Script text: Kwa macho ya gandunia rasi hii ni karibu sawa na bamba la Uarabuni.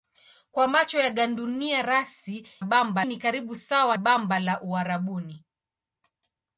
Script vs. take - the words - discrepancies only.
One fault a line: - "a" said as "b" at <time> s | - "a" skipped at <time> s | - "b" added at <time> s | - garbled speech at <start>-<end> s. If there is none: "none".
- "hii" said as "bamba" at 2.6 s
- "na" skipped at 4.0 s